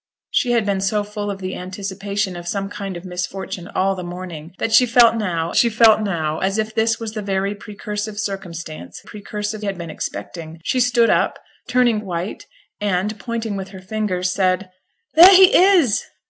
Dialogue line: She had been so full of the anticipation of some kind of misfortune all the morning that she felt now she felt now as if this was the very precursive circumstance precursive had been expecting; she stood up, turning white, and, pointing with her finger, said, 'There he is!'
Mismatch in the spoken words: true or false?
false